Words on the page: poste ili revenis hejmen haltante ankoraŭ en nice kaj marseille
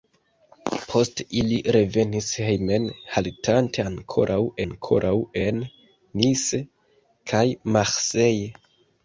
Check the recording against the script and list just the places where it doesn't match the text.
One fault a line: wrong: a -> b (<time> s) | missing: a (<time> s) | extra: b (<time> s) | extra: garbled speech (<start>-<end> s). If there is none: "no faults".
extra: ankoraŭ (4.6 s)